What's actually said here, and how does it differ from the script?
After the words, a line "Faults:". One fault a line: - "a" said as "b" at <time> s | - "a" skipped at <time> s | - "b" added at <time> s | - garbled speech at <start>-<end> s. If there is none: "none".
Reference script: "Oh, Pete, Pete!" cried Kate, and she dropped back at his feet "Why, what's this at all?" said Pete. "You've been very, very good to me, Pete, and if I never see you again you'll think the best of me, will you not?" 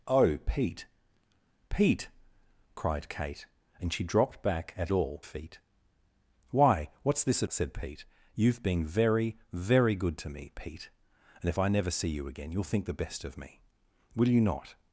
"Oh, Pete, Pete!" cried Kate, and she dropped back at all feet "Why, what's this at?" said Pete. "You've been very, very good to me, Pete, and if I never see you again you'll think the best of me, will you not?"
Faults:
- "his" said as "all" at 4.9 s
- "all" skipped at 7.5 s